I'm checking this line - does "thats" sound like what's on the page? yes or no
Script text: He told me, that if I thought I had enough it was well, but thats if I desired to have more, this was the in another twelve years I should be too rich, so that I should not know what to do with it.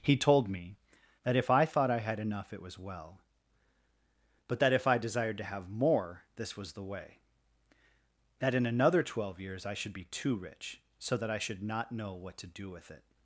no